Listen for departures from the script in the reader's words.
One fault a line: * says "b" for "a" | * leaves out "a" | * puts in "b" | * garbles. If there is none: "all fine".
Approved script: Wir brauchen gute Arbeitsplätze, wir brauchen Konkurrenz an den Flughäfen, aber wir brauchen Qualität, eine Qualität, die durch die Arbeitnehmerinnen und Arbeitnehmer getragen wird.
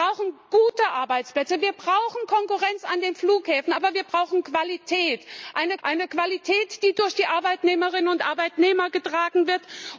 * puts in "eine"